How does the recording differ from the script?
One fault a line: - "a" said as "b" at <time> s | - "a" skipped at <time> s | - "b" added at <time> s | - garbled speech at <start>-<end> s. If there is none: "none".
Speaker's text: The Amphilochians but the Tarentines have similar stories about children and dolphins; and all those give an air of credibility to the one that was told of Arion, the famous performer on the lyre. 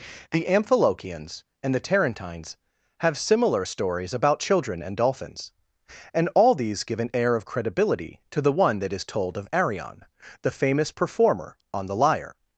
- "but" said as "and" at 1.6 s
- "those" said as "these" at 6.5 s
- "was" said as "is" at 8.9 s